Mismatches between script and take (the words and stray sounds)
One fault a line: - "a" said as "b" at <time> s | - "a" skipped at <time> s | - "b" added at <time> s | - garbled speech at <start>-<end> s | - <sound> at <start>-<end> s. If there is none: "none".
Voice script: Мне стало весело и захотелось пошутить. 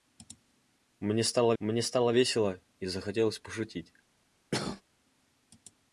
- "мне стало" added at 1.6 s
- cough at 4.5-4.8 s